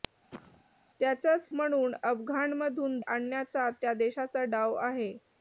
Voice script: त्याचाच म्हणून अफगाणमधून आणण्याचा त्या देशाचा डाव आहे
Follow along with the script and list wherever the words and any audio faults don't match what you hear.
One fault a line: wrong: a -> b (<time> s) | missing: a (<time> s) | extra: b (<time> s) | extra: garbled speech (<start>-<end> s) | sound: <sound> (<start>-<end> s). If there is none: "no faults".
sound: cough (0.3-0.6 s)